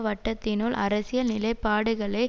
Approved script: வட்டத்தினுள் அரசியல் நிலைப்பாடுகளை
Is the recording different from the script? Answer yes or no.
no